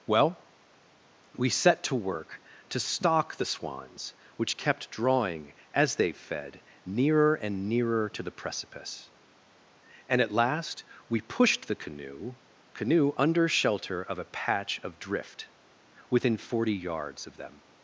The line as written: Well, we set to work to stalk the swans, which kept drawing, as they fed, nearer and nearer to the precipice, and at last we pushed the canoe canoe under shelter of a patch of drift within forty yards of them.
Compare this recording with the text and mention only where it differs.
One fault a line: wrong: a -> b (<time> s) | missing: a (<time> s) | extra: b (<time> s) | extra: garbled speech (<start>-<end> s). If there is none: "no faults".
no faults